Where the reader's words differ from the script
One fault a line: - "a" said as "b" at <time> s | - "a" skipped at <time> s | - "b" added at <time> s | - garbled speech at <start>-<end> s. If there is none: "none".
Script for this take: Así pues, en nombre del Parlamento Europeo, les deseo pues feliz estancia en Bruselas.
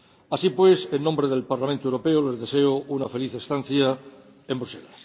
- "pues" said as "una" at 2.9 s